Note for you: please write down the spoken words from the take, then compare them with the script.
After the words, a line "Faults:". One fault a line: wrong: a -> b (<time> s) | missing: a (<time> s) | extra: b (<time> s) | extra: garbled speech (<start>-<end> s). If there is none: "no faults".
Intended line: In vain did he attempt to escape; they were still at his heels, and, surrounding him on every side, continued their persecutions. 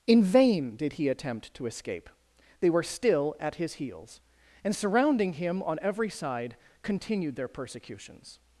In vain did he attempt to escape; they were still at his heels, and, surrounding him on every side, continued their persecutions.
Faults:
no faults